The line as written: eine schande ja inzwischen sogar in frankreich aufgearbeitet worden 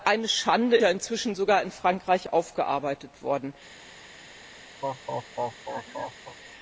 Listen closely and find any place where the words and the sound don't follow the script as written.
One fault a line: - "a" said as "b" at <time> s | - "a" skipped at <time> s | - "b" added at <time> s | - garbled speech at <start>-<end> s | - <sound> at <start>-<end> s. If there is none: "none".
- laugh at 4.8-6.4 s